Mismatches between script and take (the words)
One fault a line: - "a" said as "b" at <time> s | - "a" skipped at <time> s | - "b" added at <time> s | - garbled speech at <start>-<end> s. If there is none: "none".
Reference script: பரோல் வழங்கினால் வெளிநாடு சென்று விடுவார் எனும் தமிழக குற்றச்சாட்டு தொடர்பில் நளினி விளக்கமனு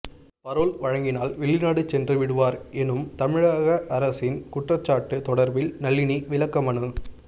- "அரசின்" added at 4.0 s